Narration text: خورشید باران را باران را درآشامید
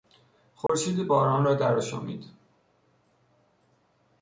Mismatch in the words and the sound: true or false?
true